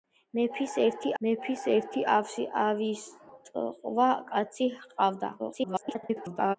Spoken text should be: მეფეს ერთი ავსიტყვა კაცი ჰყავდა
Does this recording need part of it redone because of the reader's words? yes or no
yes